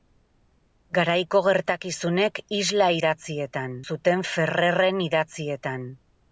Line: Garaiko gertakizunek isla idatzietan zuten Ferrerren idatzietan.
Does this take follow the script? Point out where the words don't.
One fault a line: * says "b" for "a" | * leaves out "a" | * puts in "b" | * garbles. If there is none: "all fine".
all fine